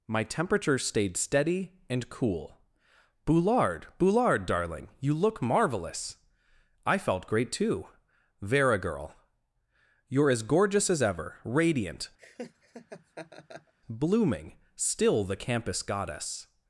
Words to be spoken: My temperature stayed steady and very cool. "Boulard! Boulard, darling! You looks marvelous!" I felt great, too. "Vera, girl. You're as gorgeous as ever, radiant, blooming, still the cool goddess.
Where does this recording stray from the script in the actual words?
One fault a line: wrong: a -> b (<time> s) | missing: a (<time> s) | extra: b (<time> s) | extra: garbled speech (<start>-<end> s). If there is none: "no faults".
missing: very (2.1 s)
wrong: looks -> look (5.1 s)
wrong: cool -> campus (15.4 s)